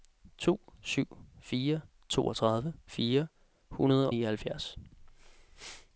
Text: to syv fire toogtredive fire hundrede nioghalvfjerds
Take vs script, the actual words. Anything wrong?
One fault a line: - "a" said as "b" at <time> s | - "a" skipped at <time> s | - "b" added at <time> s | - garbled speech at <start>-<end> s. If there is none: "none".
none